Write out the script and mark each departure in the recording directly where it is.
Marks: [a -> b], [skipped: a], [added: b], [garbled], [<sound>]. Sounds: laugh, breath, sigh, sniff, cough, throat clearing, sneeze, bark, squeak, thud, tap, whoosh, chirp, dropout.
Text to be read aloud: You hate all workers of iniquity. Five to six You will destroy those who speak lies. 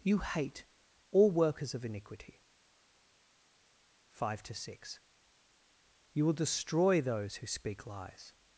You hate all workers of iniquity. Five to six You will destroy those who speak lies.